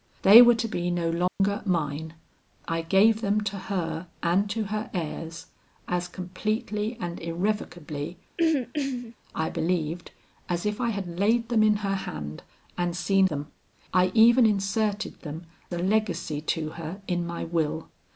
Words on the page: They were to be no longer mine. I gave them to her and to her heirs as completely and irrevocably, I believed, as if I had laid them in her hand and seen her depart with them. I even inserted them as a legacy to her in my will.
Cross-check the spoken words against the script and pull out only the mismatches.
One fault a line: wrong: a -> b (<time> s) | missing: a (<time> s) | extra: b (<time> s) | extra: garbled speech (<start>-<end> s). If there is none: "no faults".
missing: her depart with (13.3 s)
missing: as (15.5 s)